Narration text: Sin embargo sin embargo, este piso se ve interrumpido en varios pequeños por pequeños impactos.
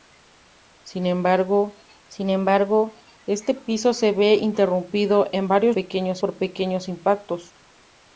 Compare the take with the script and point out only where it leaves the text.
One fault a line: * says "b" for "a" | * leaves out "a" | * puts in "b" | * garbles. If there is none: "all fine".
all fine